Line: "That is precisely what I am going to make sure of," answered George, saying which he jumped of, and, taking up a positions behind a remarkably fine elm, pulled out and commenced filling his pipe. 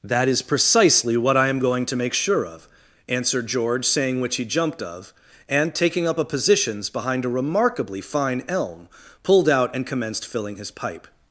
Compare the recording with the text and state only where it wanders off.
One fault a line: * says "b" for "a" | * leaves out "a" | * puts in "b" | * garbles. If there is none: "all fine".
all fine